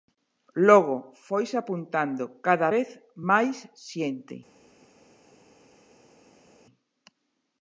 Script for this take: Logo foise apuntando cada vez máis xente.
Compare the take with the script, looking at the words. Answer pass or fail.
pass